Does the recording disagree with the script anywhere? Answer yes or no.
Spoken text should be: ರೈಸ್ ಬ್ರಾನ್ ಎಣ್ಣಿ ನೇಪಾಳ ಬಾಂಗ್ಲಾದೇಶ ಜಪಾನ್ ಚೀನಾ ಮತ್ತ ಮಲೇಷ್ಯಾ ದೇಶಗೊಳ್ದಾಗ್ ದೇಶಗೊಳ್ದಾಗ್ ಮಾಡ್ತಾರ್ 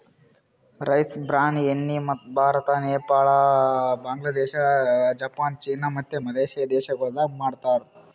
yes